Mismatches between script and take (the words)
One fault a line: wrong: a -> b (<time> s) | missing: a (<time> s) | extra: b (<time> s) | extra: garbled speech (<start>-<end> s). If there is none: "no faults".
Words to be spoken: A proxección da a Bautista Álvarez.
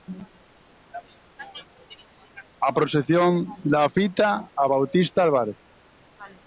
extra: fita (4.0 s)